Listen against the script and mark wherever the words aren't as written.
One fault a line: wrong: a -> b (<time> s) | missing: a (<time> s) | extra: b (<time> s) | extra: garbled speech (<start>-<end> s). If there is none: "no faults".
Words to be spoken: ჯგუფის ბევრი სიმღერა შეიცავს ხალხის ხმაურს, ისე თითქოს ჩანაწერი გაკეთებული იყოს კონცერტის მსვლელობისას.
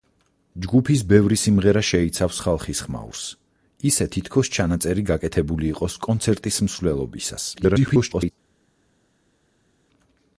extra: garbled speech (7.6-8.3 s)